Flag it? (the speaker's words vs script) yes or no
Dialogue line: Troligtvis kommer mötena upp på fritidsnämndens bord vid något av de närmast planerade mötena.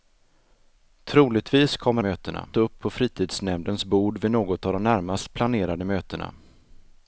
no